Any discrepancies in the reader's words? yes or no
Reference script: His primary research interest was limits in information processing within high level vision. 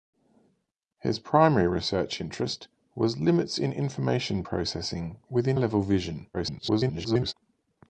yes